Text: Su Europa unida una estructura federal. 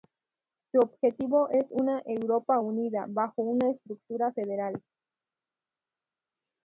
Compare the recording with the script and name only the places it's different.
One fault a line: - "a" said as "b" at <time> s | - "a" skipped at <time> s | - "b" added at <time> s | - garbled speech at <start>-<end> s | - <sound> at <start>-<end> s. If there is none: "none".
- "objetivo es una" added at 0.8 s
- "bajo" added at 3.1 s